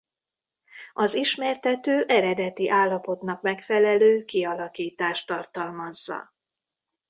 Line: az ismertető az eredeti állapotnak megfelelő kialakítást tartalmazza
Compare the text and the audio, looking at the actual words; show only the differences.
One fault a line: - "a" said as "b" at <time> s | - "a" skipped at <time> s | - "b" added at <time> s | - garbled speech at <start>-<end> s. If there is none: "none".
- "az" skipped at 2.0 s